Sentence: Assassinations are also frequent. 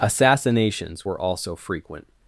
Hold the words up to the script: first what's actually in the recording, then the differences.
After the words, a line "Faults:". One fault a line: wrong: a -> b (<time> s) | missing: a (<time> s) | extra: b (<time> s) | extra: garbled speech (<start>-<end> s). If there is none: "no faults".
Assassinations were also frequent.
Faults:
wrong: are -> were (1.0 s)